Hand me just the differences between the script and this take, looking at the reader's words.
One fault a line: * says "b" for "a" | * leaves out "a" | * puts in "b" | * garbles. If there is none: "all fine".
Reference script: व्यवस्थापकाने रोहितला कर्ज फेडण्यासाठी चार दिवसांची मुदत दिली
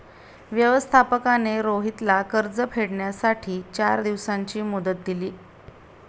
all fine